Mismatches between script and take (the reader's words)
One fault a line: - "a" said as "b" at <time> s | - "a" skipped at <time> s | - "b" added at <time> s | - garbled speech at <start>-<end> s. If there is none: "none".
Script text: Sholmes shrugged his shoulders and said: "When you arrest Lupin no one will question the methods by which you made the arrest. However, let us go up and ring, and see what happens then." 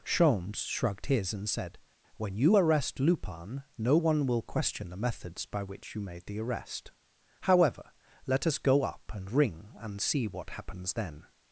- "shoulders" skipped at 1.3 s